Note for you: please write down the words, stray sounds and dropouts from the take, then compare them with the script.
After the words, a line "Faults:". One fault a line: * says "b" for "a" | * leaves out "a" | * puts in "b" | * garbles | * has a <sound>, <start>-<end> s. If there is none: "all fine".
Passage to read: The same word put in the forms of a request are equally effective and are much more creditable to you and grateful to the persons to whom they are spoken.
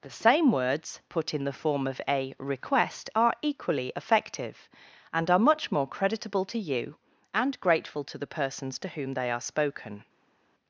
The same words put in the form of a request are equally effective and are much more creditable to you and grateful to the persons to whom they are spoken.
Faults:
* says "words" for "word"
* says "form" for "forms"